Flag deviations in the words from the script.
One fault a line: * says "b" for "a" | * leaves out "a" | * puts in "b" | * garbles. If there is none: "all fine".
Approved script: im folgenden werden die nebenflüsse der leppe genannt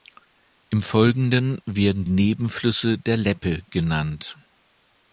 * leaves out "die"